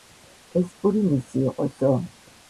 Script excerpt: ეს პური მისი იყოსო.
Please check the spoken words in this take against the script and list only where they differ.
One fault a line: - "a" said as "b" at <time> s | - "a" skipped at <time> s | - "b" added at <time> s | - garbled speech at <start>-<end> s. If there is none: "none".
none